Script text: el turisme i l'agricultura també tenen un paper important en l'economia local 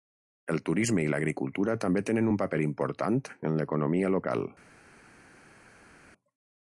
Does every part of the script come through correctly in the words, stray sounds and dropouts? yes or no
yes